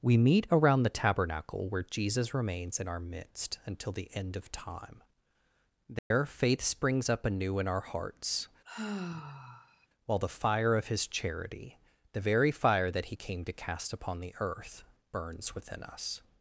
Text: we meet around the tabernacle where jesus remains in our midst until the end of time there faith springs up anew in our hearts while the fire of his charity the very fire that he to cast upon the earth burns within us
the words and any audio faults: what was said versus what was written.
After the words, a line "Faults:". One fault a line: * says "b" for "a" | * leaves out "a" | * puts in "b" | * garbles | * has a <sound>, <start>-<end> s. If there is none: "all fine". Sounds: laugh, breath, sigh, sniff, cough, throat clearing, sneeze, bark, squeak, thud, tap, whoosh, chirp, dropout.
we meet around the tabernacle where jesus remains in our midst until the end of time there faith springs up anew in our hearts while the fire of his charity the very fire that he came to cast upon the earth burns within us
Faults:
* has a dropout, 6.0-6.1 s
* has a sigh, 8.6-9.9 s
* puts in "came"